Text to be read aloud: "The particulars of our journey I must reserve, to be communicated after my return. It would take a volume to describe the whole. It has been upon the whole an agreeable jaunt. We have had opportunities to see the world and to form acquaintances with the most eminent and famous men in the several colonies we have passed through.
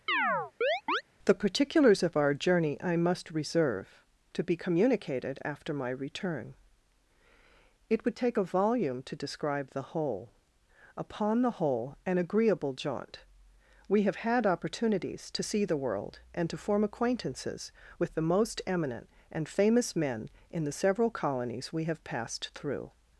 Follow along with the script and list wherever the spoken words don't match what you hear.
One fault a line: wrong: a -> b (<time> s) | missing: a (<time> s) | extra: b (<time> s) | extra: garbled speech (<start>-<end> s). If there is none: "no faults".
missing: It has been (10.3 s)